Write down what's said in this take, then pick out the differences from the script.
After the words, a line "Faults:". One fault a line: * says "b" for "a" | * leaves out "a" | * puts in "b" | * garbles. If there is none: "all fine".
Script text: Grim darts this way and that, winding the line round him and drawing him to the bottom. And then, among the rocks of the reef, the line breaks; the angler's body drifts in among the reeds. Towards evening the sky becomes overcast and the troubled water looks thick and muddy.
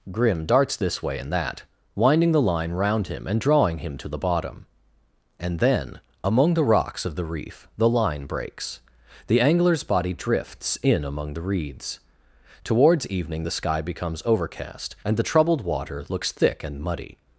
Grim darts this way and that, winding the line round him and drawing him to the bottom. And then, among the rocks of the reef, the line breaks; the angler's body drifts in among the reeds. Towards evening the sky becomes overcast and the troubled water looks thick and muddy.
Faults:
all fine